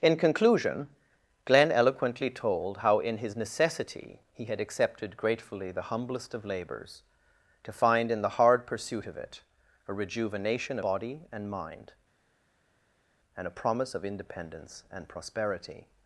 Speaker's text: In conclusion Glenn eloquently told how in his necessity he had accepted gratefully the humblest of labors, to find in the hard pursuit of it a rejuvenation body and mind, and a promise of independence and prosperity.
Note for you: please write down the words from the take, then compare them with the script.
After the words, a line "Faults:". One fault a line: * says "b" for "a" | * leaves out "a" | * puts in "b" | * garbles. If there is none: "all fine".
In conclusion Glenn eloquently told how in his necessity he had accepted gratefully the humblest of labors, to find in the hard pursuit of it a rejuvenation body and mind, and a promise of independence and prosperity.
Faults:
all fine